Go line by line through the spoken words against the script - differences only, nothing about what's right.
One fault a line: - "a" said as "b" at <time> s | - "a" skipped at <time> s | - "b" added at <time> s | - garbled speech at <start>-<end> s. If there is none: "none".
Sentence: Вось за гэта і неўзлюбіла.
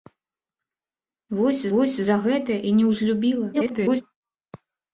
- "вось" added at 1.7 s
- garbled speech at 3.5-4.0 s